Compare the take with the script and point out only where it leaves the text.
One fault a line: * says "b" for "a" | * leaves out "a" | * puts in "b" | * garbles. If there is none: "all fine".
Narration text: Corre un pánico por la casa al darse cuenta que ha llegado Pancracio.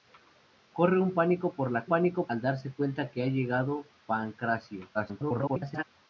* says "pánico" for "casa"
* garbles